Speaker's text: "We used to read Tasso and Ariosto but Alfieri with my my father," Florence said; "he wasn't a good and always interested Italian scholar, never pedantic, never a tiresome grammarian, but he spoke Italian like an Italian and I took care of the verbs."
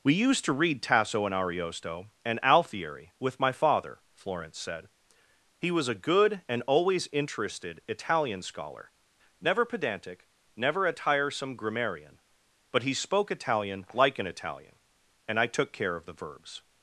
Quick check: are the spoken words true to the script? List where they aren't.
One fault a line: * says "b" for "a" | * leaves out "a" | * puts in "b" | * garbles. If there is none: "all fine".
* says "and" for "but"
* leaves out "my"
* says "was" for "wasn't"